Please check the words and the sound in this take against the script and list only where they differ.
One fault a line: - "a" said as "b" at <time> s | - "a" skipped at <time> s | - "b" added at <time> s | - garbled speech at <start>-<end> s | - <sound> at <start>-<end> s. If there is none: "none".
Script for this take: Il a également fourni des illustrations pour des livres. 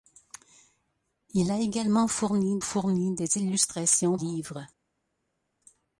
- "fourni" added at 2.6 s
- "pour des" skipped at 4.2 s